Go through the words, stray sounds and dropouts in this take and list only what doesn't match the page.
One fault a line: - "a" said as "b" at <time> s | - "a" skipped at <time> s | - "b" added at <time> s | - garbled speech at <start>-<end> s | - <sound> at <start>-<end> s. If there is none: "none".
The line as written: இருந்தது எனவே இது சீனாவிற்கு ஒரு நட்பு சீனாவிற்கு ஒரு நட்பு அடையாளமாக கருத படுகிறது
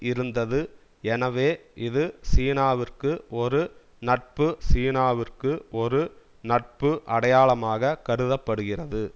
none